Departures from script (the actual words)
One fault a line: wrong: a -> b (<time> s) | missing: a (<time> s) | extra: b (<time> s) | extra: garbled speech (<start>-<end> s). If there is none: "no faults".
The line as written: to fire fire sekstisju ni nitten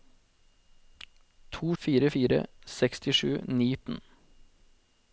no faults